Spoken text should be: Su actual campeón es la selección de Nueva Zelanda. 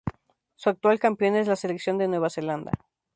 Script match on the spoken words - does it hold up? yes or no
yes